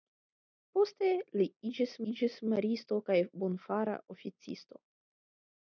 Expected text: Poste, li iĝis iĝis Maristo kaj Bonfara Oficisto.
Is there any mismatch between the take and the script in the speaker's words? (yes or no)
no